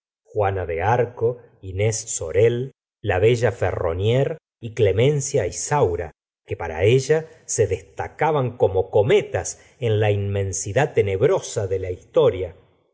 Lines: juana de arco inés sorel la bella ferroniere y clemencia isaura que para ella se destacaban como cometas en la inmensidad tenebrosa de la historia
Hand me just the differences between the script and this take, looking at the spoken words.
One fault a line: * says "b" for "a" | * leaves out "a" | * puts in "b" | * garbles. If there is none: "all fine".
all fine